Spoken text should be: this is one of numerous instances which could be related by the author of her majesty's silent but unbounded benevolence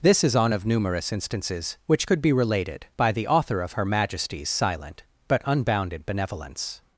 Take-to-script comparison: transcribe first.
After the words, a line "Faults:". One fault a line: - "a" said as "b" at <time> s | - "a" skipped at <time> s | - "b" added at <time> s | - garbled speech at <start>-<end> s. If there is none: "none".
this is on of numerous instances which could be related by the author of her majesty's silent but unbounded benevolence
Faults:
- "one" said as "on" at 0.3 s